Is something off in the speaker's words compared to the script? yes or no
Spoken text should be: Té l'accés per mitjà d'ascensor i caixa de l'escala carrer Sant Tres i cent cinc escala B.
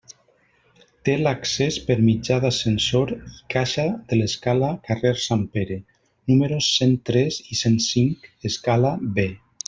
yes